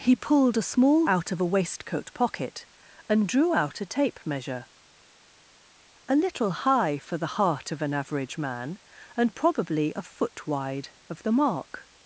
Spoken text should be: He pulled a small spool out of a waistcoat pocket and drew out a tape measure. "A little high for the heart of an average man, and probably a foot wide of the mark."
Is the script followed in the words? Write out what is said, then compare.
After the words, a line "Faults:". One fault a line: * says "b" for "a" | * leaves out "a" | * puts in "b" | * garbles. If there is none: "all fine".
He pulled a small out of a waistcoat pocket and drew out a tape measure. "A little high for the heart of an average man, and probably a foot wide of the mark."
Faults:
* leaves out "spool"